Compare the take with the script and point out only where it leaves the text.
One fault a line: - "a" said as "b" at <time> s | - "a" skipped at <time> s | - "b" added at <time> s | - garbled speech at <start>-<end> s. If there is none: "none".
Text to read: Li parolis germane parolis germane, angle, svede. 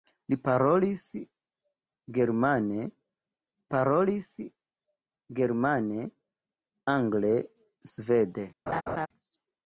none